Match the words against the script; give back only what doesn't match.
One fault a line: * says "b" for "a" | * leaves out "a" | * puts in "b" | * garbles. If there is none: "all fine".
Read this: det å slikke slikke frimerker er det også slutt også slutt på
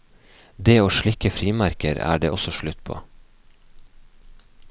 * leaves out "slikke"
* leaves out "også slutt"